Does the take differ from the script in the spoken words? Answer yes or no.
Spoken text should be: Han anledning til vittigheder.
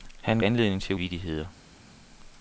no